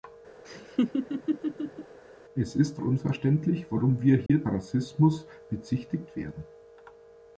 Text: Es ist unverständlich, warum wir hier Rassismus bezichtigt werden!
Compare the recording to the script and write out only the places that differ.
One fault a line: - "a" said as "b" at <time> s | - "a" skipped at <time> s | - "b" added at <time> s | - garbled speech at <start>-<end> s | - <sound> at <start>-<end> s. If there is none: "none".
- laugh at 0.4-2.0 s
- dropout at 4.3-4.3 s